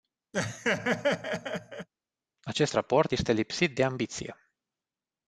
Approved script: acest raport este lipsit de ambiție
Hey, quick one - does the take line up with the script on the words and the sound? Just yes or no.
no